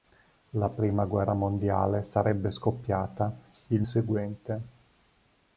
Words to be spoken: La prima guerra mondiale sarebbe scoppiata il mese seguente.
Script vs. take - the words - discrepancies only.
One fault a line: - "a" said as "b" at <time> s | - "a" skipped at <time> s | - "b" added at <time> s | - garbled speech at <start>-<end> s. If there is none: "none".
- "mese" skipped at 3.8 s